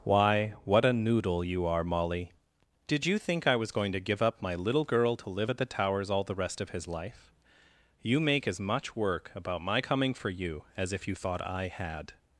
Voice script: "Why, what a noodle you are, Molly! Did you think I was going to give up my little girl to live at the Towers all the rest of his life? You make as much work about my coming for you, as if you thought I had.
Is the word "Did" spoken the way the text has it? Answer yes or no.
yes